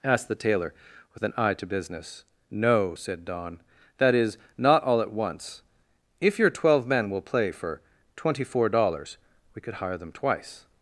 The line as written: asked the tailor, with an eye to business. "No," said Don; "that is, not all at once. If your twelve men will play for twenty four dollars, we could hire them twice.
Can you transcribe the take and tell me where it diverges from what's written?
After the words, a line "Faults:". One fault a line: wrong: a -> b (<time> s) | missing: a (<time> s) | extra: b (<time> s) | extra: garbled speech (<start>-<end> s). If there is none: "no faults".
asked the tailor, with an eye to business. "No," said Don; "that is, not all at once. If your twelve men will play for twenty four dollars, we could hire them twice.
Faults:
no faults